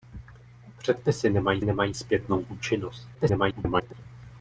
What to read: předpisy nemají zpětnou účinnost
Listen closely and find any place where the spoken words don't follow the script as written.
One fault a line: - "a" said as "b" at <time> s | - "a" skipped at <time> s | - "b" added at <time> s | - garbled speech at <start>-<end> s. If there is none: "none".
- "nemají" added at 1.6 s
- garbled speech at 3.1-3.9 s